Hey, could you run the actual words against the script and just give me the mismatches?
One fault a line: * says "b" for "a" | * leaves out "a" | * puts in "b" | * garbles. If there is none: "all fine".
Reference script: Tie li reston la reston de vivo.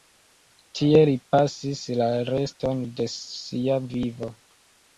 * says "pasis" for "reston"
* puts in "sia"